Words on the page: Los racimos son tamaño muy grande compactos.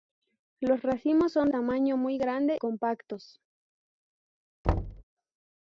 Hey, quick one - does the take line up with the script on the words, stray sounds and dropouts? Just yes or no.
no